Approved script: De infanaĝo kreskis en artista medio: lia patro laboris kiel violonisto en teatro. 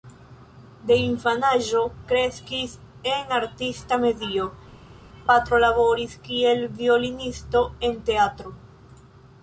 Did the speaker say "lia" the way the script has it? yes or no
no